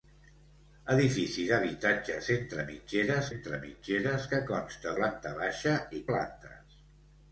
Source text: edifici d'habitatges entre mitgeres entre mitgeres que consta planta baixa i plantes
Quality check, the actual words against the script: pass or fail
pass